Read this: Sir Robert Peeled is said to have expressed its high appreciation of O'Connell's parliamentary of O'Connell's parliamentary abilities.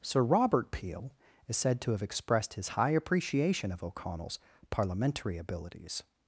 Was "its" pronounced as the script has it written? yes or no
no